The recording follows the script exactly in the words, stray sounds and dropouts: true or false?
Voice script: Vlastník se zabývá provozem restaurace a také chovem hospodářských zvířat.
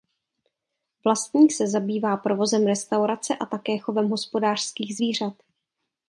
true